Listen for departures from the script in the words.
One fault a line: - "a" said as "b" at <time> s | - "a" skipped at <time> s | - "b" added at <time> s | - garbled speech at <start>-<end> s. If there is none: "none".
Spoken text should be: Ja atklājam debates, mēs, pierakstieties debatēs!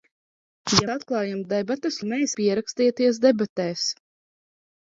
none